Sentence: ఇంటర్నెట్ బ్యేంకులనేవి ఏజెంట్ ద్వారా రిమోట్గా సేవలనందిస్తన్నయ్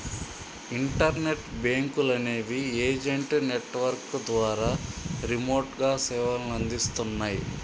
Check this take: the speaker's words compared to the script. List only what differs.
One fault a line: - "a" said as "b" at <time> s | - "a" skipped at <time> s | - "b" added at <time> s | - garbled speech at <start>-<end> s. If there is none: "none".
- "నెట్వర్క్" added at 3.5 s